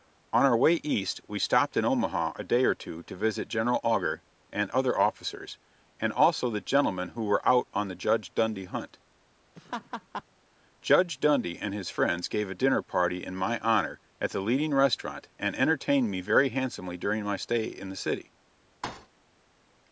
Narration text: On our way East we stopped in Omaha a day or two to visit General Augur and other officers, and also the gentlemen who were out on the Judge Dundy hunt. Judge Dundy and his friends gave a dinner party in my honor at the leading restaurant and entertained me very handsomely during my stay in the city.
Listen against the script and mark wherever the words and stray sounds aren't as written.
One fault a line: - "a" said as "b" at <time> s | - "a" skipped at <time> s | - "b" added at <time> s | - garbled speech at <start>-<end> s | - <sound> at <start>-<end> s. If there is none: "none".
- laugh at 9.6-10.2 s
- thud at 18.8-19.1 s